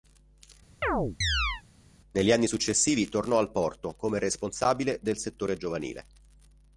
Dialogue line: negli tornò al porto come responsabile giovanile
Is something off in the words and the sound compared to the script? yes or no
yes